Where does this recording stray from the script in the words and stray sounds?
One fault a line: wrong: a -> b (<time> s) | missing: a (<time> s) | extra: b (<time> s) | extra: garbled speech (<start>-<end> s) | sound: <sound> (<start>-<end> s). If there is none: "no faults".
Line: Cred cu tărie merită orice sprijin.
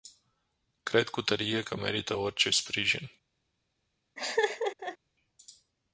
extra: că (1.6 s)
sound: laugh (4.2-5.0 s)